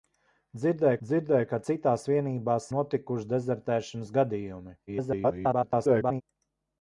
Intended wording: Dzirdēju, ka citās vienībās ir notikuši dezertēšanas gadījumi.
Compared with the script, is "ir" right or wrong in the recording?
wrong